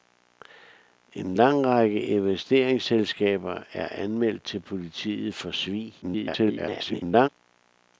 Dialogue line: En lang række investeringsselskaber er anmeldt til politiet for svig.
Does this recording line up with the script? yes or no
no